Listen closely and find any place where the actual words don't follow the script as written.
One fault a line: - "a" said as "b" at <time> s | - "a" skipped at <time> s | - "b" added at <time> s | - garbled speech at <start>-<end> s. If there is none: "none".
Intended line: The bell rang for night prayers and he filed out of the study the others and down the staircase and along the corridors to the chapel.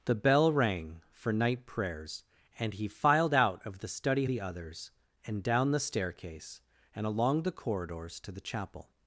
none